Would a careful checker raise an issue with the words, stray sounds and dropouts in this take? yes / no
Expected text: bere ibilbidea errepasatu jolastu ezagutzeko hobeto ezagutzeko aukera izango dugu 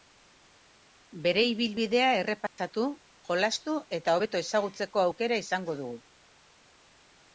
yes